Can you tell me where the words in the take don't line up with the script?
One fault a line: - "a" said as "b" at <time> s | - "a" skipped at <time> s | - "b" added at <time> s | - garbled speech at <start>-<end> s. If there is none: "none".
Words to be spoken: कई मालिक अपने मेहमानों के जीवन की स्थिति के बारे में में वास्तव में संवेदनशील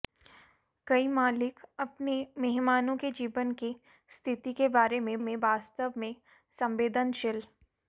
none